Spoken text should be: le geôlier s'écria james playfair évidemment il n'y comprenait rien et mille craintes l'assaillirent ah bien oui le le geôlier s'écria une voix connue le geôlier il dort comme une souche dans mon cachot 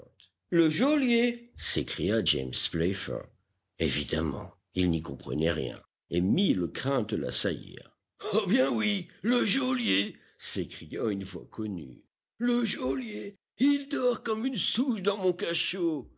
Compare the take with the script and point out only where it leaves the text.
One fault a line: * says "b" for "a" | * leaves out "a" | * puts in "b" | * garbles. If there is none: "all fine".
* leaves out "le"